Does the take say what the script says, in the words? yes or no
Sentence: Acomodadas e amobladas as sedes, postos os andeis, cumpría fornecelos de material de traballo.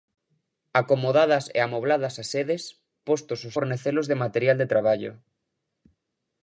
no